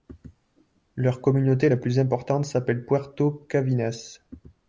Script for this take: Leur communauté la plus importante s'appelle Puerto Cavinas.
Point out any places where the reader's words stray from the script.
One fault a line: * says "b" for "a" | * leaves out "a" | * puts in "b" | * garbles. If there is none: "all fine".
all fine